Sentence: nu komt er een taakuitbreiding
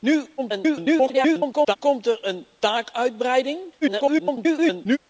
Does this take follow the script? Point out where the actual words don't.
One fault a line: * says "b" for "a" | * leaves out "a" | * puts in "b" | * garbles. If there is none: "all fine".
* garbles
* garbles